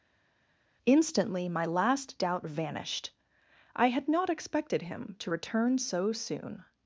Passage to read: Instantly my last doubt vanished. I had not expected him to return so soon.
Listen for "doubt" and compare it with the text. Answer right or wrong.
right